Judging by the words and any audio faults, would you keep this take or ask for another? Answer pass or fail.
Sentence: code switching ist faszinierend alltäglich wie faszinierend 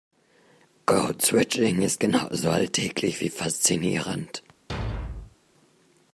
fail